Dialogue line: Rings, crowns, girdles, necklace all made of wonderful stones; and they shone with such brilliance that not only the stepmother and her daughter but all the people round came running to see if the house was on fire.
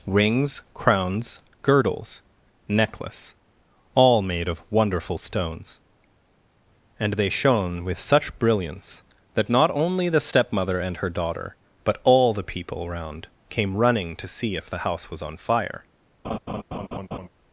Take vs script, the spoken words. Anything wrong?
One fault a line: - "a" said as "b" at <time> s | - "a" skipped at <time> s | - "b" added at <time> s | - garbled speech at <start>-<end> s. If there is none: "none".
none